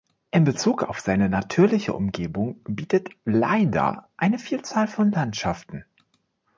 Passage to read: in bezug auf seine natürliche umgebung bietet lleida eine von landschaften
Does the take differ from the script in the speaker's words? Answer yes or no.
yes